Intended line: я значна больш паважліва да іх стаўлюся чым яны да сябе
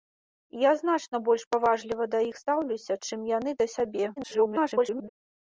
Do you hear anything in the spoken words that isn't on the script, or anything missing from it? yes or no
yes